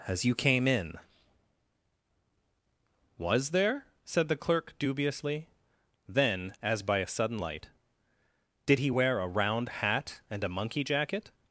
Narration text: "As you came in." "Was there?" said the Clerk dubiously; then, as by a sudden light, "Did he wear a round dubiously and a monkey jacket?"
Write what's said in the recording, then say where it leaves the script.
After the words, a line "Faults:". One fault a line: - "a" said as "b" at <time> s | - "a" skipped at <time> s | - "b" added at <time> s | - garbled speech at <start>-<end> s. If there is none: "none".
"As you came in." "Was there?" said the Clerk dubiously; then, as by a sudden light, "Did he wear a round hat and a monkey jacket?"
Faults:
- "dubiously" said as "hat" at 9.7 s